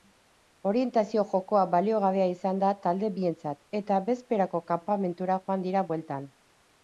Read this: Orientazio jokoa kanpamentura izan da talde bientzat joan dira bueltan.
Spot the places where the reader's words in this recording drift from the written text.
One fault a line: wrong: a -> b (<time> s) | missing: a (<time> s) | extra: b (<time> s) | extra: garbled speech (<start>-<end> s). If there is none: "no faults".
wrong: kanpamentura -> baliogabea (1.7 s)
extra: eta bezperako kanpamentura (3.8 s)